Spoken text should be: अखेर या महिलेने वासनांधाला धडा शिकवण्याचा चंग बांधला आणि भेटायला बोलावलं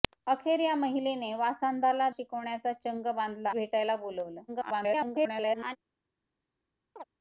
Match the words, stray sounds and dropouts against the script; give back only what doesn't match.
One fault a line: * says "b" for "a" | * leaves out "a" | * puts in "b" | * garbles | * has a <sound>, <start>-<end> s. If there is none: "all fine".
* leaves out "धडा"
* leaves out "आणि"
* garbles
* has a chirp, 7.0-7.0 s